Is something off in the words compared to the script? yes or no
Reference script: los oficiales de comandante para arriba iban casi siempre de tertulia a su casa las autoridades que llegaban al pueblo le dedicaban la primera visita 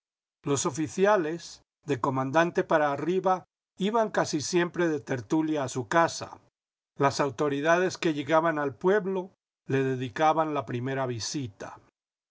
no